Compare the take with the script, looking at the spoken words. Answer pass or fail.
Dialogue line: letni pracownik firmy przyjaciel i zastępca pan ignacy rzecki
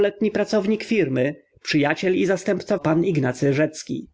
pass